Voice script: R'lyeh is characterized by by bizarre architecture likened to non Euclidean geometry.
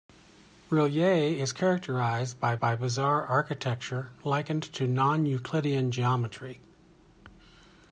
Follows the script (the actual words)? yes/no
yes